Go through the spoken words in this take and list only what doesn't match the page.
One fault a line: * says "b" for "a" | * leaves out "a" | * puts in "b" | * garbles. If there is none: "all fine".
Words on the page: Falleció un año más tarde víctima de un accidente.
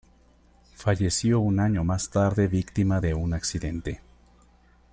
all fine